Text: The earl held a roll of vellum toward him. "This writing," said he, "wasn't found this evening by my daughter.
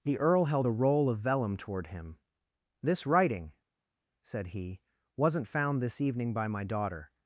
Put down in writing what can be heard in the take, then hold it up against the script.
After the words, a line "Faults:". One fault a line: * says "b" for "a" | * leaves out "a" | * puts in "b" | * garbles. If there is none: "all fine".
The earl held a roll of vellum toward him. "This writing," said he, "wasn't found this evening by my daughter.
Faults:
all fine